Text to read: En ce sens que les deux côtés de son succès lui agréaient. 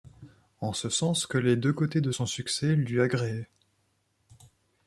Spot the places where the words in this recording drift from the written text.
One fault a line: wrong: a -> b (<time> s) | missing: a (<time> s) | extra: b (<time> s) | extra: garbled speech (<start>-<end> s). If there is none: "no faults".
no faults